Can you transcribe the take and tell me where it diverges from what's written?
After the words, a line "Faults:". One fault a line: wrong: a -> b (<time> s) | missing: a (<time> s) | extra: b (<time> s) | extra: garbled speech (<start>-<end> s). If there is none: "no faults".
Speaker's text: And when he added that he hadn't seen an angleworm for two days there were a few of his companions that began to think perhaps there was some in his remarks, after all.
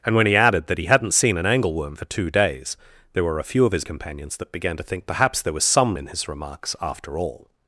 And when he added that he hadn't seen an angleworm for two days there were a few of his companions that began to think perhaps there was some in his remarks, after all.
Faults:
no faults